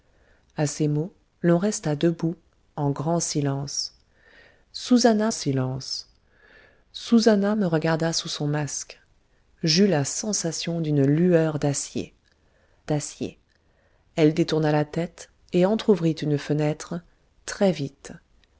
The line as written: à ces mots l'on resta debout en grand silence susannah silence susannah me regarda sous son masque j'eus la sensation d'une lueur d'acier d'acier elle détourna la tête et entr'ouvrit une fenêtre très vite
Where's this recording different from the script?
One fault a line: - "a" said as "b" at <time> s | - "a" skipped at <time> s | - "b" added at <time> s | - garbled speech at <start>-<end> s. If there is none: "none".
none